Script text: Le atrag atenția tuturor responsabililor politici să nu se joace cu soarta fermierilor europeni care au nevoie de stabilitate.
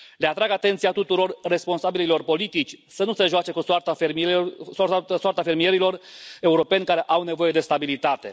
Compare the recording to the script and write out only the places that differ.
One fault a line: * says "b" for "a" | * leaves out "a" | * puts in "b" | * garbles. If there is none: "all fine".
all fine